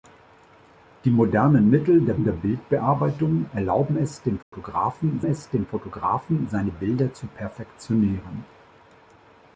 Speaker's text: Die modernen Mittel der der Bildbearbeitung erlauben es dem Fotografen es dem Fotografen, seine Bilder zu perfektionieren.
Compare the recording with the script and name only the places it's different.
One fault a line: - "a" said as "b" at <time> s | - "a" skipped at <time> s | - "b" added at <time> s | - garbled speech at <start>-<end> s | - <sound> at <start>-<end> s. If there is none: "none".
- dropout at 4.4-4.5 s